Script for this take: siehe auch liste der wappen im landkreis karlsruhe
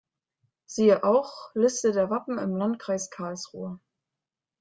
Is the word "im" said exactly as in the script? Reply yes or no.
yes